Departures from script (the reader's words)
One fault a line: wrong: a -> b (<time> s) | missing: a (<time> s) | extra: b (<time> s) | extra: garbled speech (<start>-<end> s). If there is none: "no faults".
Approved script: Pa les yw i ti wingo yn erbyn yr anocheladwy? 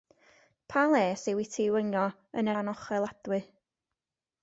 missing: erbyn yr (2.5 s)